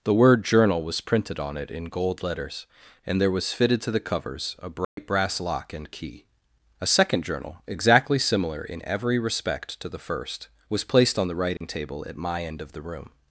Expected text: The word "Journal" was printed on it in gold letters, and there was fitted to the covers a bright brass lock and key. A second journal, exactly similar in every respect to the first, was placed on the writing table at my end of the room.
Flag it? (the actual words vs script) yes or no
no